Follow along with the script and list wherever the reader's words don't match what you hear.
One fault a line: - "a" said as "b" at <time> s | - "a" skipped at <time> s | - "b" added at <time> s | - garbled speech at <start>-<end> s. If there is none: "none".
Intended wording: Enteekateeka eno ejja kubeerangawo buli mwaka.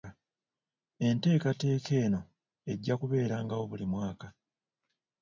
none